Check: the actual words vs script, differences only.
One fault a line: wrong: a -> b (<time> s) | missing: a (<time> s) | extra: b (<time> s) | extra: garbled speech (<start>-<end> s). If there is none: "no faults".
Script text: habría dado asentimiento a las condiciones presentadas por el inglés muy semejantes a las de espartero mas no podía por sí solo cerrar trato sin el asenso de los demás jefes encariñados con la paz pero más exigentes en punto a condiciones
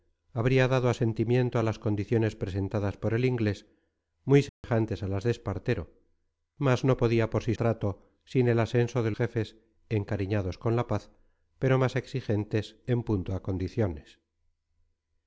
missing: solo cerrar (7.5 s)
missing: los demás (9.1 s)